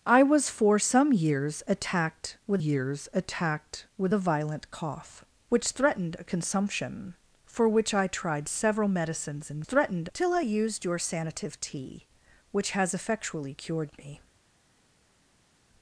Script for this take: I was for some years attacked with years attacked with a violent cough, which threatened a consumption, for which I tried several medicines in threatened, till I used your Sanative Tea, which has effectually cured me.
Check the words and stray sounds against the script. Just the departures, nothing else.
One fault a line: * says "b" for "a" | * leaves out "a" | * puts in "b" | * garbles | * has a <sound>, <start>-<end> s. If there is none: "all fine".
all fine